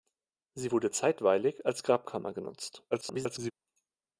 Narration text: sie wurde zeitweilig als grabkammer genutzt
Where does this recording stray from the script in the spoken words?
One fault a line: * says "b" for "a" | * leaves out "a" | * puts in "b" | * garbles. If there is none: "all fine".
* garbles